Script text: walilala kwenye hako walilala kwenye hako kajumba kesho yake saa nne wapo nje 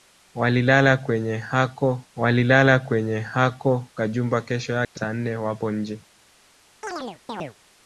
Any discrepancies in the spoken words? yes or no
no